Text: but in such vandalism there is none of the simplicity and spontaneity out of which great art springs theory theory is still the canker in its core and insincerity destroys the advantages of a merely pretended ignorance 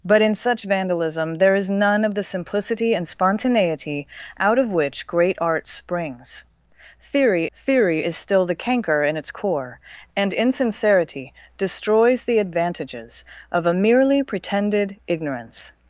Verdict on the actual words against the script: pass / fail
pass